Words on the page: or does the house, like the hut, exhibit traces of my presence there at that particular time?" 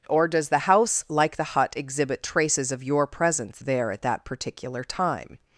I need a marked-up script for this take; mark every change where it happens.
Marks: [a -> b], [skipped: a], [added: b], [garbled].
or does the house, like the hut, exhibit traces of [my -> your] presence there at that particular time?"